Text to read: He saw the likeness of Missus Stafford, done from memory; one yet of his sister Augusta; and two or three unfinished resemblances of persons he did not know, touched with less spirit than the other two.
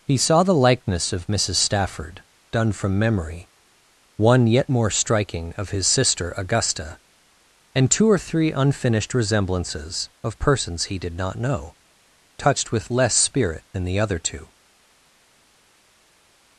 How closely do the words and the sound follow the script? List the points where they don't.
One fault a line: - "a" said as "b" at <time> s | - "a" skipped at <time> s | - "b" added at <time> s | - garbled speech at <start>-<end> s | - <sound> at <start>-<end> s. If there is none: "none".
- "more striking" added at 4.7 s